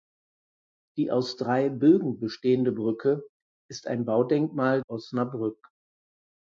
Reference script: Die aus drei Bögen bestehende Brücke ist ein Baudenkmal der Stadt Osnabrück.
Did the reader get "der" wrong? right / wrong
wrong